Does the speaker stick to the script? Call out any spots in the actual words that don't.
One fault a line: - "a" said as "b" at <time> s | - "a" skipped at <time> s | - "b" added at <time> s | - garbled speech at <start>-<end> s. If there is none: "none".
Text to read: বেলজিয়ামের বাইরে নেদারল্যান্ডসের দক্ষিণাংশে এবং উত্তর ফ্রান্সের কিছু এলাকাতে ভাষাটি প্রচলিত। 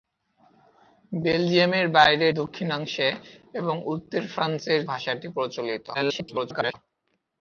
- "নেদারল্যান্ডসের" skipped at 2.3 s
- "কিছু এলাকাতে" skipped at 4.8 s
- garbled speech at 5.9-6.7 s